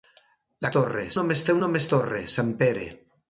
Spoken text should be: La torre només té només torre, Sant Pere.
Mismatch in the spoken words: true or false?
false